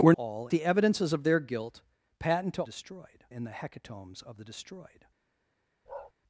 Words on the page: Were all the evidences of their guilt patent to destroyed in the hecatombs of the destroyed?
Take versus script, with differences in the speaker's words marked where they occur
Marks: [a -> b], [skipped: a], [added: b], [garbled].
Were all the evidences of their guilt patent to destroyed in the hecatombs of the destroyed?